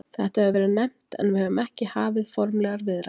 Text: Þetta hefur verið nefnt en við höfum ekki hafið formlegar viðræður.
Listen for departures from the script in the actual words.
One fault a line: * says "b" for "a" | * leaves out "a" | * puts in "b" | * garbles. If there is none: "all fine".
all fine